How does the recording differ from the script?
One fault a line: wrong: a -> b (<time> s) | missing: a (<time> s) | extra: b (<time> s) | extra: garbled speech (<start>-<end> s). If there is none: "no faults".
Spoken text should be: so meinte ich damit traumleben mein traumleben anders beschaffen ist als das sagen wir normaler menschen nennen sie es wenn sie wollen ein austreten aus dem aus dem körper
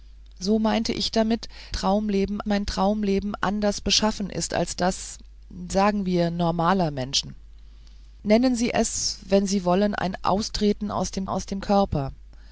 no faults